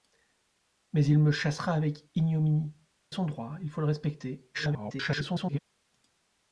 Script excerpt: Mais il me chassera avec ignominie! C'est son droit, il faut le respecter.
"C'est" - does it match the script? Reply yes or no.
no